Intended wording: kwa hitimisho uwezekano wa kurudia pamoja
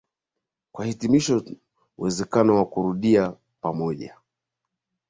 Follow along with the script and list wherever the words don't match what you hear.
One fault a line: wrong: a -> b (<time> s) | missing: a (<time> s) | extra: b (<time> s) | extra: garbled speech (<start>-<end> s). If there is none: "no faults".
no faults